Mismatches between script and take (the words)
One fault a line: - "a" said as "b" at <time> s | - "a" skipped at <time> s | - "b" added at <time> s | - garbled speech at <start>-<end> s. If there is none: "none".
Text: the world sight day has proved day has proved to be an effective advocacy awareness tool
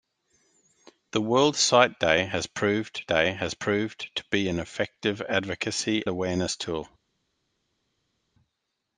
none